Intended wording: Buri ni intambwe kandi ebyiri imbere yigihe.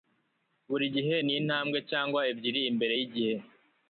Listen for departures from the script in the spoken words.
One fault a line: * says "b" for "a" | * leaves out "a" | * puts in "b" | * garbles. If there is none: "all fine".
* puts in "gihe"
* says "cyangwa" for "kandi"